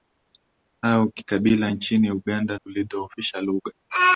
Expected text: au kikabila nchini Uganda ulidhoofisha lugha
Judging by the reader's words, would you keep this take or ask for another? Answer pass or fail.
pass